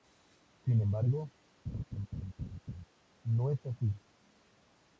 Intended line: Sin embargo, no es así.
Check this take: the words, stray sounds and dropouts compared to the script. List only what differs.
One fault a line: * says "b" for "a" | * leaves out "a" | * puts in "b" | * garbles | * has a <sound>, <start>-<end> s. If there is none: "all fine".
* has a laugh, 1.6-2.8 s